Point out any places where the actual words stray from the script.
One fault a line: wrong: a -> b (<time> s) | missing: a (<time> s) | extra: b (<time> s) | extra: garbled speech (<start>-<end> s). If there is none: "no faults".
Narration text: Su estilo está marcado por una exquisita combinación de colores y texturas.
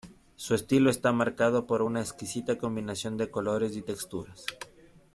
no faults